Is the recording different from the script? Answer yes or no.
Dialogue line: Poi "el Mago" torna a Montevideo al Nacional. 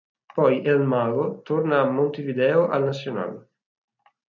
no